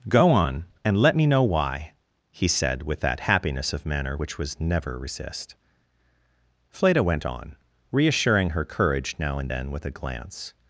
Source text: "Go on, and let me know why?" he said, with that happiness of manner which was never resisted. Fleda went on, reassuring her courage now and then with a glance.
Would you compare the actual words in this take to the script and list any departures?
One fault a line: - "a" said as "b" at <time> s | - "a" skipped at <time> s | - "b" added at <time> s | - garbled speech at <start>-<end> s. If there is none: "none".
- "resisted" said as "resist" at 5.0 s